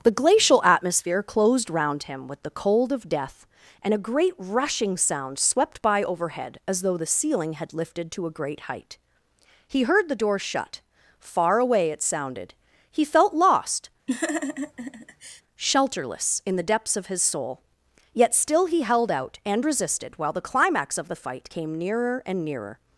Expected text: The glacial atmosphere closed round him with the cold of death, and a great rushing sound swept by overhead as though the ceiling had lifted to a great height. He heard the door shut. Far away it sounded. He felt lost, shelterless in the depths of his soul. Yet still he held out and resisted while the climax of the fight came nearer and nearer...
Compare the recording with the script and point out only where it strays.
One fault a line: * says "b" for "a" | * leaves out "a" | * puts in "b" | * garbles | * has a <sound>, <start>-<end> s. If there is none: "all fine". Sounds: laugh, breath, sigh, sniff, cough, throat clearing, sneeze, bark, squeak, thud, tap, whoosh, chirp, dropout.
* has a laugh, 14.1-15.4 s